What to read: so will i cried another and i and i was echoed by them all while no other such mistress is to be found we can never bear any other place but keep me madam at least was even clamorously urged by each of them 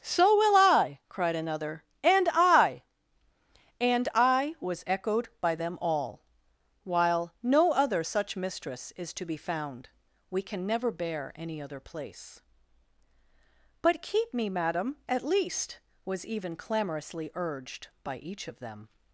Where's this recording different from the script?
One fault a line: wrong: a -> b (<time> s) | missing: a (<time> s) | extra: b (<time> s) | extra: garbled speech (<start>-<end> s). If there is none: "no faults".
no faults